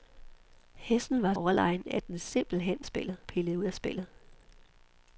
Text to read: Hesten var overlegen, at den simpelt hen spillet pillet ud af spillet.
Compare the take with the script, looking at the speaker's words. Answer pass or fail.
pass